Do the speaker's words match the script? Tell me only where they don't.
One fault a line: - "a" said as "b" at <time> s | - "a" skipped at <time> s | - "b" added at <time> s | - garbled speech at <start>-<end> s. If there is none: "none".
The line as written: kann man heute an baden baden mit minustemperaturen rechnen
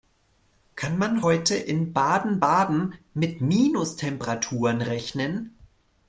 - "an" said as "in" at 1.5 s